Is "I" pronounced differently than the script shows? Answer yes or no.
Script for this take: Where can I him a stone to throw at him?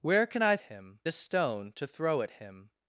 no